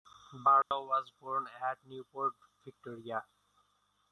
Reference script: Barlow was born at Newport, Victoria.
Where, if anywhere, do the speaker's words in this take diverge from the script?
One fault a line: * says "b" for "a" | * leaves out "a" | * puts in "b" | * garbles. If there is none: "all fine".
all fine